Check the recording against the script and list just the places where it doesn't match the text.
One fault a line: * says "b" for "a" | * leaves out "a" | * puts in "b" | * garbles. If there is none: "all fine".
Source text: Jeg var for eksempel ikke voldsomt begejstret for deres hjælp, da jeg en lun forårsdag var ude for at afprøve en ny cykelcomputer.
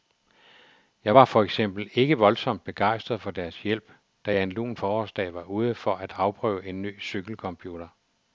all fine